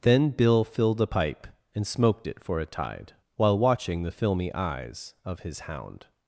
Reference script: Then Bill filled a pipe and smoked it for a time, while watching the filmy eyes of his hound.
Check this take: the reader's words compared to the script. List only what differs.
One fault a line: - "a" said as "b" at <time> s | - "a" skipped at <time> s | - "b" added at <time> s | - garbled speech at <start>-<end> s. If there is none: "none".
- "time" said as "tide" at 2.6 s